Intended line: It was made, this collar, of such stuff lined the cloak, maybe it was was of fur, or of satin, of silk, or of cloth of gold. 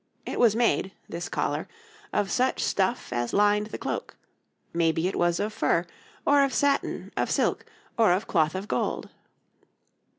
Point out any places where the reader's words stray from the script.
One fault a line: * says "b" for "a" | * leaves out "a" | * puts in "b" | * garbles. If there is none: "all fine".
* puts in "as"
* leaves out "was"